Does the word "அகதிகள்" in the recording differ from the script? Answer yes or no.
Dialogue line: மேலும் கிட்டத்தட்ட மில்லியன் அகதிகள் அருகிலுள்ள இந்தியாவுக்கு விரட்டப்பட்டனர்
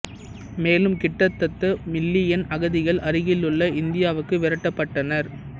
no